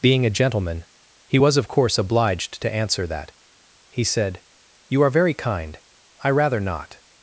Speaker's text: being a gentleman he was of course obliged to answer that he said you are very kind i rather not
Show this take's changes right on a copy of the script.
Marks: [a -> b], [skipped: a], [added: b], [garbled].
being a gentleman he was of course obliged to answer that he said you are very kind i rather not